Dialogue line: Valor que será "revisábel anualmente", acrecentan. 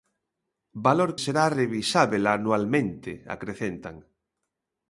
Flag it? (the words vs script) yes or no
yes